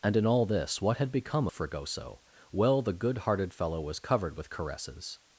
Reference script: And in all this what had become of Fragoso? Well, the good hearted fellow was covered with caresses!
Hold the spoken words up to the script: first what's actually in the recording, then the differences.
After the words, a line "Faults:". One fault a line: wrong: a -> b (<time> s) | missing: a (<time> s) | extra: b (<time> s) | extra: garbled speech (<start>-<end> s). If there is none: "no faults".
And in all this what had become Fragoso? Well, the good hearted fellow was covered with caresses!
Faults:
missing: of (1.5 s)